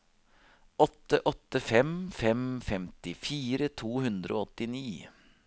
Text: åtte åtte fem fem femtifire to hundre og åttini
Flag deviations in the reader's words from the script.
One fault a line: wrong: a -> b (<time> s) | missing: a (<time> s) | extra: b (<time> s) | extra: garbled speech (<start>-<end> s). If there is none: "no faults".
no faults